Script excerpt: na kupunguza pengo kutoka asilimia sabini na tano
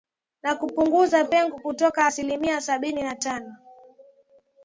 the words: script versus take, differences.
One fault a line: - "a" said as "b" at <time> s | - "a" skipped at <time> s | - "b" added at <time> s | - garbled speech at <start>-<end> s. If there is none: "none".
none